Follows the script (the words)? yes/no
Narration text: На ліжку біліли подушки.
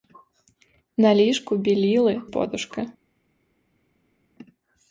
yes